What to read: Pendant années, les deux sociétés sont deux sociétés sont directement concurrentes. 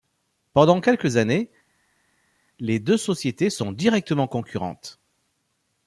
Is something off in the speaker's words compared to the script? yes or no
yes